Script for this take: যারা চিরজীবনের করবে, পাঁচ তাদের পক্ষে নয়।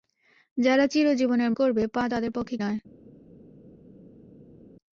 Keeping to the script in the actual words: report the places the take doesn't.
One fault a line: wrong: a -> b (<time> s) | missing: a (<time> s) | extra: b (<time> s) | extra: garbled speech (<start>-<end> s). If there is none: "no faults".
no faults